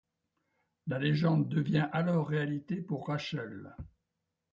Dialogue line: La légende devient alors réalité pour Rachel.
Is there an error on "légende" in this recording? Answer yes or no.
no